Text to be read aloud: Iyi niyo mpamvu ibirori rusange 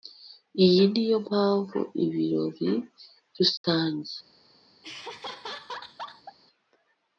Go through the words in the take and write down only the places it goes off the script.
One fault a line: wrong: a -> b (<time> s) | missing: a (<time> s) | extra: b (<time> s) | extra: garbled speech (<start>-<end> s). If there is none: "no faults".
no faults